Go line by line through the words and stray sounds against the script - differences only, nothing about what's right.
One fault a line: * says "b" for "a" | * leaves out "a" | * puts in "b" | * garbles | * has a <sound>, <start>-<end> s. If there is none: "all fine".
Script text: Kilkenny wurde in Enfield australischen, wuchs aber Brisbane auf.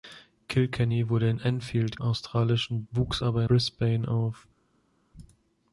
all fine